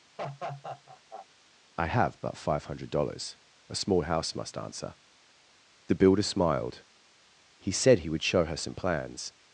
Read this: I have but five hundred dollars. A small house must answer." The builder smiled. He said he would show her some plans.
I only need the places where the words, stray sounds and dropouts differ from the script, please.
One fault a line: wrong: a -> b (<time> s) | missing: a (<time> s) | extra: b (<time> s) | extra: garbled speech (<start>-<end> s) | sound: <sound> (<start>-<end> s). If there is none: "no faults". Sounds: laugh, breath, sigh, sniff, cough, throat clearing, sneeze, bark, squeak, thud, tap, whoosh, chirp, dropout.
sound: laugh (0.2-1.3 s)